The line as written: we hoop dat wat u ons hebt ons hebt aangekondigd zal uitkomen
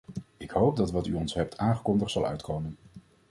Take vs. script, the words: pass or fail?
fail